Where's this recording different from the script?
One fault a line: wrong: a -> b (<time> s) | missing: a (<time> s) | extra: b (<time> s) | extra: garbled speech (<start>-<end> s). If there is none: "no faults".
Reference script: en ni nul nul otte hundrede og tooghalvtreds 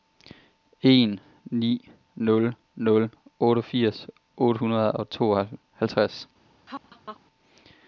extra: otteogfirs (3.4 s)